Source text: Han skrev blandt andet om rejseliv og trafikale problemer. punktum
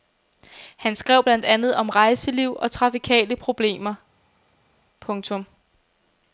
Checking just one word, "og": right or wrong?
right